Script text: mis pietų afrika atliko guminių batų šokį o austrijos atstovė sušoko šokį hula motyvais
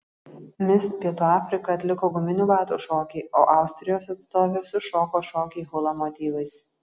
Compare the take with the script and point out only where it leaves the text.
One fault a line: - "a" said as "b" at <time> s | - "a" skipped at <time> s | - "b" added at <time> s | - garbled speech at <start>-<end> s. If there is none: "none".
none